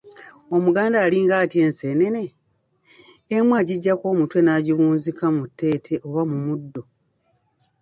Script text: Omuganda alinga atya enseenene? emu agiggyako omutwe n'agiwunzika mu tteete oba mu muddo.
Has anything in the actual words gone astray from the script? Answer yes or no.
no